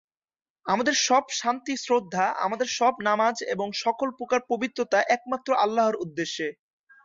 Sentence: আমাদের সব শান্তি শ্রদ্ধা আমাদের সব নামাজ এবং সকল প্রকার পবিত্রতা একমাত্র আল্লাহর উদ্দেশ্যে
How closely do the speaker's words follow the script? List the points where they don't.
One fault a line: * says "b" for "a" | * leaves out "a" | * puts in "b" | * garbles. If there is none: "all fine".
all fine